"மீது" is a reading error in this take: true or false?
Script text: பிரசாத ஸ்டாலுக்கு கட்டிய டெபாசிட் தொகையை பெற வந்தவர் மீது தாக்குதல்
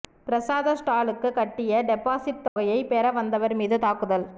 false